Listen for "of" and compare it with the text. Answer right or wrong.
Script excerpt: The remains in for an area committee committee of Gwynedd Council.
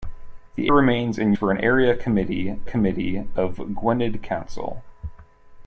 right